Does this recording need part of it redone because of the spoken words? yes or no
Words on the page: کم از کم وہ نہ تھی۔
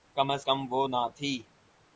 no